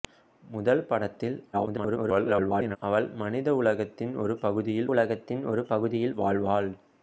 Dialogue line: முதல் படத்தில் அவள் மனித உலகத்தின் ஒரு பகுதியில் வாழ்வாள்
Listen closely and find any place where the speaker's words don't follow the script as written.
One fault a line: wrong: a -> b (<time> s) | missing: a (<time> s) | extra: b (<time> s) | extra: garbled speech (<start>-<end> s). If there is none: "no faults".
extra: garbled speech (1.5-2.8 s)
extra: உலகத்தின் ஒரு பகுதியில் (4.9 s)